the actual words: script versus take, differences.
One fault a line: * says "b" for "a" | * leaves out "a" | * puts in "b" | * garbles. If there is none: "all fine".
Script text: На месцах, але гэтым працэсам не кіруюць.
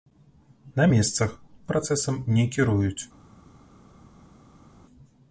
* leaves out "але гэтым"